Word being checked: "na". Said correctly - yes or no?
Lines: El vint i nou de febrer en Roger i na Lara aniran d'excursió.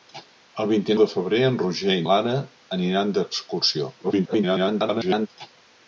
no